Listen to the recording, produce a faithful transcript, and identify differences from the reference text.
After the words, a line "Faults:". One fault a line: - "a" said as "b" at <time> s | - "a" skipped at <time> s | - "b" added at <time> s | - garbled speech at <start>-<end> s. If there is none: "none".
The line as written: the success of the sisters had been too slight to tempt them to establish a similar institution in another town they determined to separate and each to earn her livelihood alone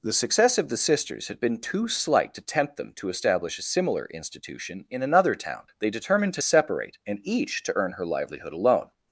the success of the sisters had been too slight to tempt them to establish a similar institution in another town they determined to separate and each to earn her livelihood alone
Faults:
none